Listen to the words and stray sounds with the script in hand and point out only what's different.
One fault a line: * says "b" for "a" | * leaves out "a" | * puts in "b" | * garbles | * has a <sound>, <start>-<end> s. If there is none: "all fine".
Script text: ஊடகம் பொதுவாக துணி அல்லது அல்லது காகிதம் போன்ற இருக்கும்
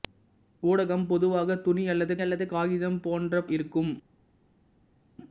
all fine